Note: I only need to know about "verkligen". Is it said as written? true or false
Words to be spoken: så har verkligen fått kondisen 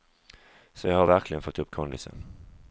true